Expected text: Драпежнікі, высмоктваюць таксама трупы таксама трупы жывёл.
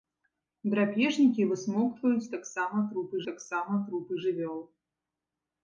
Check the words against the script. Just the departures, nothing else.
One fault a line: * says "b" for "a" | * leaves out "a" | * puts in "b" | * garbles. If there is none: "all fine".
all fine